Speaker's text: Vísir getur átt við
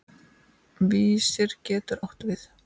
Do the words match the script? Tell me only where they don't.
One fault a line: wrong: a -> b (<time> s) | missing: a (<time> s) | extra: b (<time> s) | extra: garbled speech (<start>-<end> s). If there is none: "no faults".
no faults